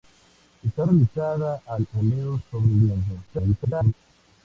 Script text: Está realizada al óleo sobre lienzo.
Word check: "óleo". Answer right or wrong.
right